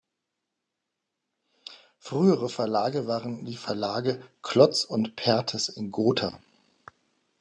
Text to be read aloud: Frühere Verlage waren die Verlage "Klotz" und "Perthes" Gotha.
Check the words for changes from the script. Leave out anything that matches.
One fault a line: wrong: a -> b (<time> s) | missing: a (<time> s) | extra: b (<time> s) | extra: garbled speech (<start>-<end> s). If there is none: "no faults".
extra: in (5.7 s)